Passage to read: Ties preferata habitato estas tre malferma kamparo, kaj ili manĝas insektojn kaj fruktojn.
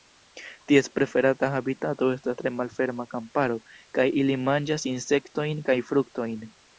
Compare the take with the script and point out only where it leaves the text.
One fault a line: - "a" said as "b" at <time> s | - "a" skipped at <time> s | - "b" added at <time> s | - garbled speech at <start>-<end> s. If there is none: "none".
none